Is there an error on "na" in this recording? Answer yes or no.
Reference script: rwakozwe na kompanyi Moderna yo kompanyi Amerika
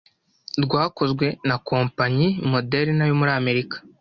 no